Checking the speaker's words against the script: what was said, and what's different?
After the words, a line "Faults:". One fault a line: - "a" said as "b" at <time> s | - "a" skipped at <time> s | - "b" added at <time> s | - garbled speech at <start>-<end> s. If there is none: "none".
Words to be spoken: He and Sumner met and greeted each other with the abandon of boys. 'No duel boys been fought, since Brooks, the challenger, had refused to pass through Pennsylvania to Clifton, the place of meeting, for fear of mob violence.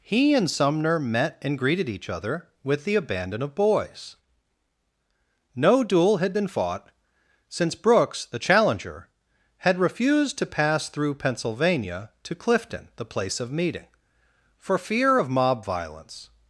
He and Sumner met and greeted each other with the abandon of boys. 'No duel had been fought, since Brooks, the challenger, had refused to pass through Pennsylvania to Clifton, the place of meeting, for fear of mob violence.
Faults:
- "boys" said as "had" at 6.2 s